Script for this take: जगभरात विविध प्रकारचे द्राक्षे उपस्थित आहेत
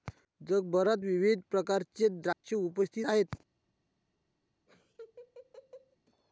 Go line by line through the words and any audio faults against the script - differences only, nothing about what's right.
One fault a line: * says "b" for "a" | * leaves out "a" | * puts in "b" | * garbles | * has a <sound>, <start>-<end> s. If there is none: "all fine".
* has a dropout, 2.3-2.4 s
* has a laugh, 4.7-6.0 s